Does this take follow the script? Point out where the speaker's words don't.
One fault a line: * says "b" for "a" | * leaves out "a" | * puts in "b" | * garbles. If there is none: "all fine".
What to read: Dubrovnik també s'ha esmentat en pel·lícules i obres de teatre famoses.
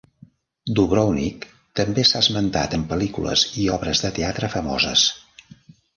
all fine